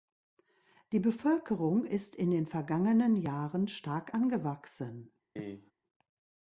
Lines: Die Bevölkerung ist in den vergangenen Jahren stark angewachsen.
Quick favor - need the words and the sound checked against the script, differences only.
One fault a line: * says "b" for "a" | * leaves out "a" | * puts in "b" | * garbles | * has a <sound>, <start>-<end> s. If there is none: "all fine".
* has a cough, 5.4-5.7 s